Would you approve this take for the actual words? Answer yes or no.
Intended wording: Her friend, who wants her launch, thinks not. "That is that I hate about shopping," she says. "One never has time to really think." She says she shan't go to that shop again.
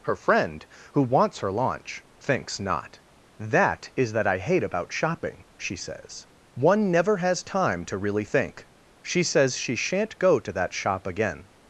yes